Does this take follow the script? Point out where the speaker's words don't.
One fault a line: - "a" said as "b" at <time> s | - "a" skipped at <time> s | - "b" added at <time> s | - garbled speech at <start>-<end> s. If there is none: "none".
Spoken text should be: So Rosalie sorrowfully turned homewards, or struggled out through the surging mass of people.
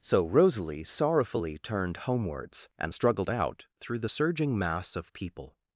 - "or" said as "and" at 2.8 s